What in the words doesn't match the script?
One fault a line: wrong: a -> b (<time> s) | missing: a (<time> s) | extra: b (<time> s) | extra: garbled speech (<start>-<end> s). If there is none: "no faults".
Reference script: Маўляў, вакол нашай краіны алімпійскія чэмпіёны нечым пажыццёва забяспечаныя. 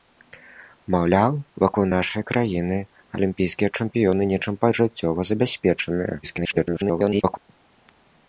extra: garbled speech (6.2-7.4 s)